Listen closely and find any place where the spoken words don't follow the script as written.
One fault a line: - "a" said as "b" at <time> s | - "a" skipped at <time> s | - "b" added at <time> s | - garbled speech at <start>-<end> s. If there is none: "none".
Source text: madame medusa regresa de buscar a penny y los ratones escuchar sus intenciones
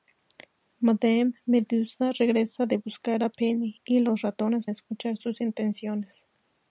none